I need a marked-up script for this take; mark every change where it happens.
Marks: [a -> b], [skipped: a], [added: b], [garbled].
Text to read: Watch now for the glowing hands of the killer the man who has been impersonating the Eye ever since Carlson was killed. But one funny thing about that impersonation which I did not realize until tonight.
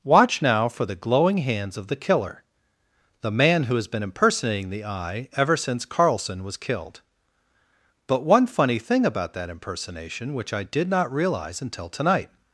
Watch now for the glowing hands of the killer the man who has been impersonating the Eye ever since Carlson was killed. But one funny thing about that impersonation which I did not realize until tonight.